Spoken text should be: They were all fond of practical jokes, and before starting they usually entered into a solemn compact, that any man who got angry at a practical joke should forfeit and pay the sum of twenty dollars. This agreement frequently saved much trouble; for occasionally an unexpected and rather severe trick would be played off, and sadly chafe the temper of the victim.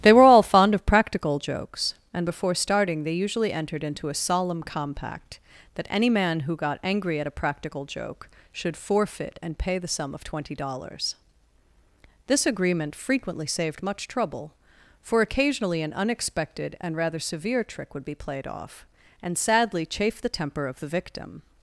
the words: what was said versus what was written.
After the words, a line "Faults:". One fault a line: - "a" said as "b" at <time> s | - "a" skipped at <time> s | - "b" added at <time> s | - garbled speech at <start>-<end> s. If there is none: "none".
They were all fond of practical jokes, and before starting they usually entered into a solemn compact, that any man who got angry at a practical joke should forfeit and pay the sum of twenty dollars. This agreement frequently saved much trouble; for occasionally an unexpected and rather severe trick would be played off, and sadly chafe the temper of the victim.
Faults:
none